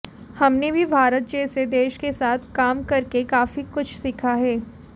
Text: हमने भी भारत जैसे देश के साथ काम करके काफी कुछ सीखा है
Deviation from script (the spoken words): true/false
false